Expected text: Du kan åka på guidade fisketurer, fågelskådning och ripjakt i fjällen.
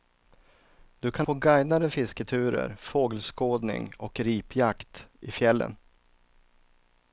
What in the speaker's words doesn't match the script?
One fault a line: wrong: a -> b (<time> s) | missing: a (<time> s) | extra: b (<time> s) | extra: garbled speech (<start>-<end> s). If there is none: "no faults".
missing: åka (1.3 s)